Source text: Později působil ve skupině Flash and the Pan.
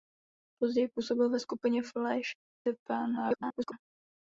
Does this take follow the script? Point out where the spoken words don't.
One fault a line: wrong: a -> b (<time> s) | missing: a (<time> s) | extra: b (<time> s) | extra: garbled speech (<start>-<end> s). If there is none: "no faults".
missing: and (2.3 s)
extra: garbled speech (3.1-3.7 s)